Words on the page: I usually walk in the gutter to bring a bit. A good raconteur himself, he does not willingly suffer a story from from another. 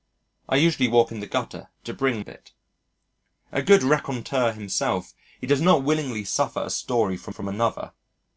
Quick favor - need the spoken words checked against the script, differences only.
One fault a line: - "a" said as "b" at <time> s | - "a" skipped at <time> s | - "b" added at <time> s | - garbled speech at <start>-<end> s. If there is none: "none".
none